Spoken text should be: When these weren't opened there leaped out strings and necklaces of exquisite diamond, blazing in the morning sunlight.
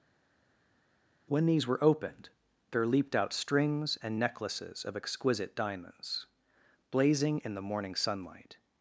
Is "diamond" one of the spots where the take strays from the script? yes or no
yes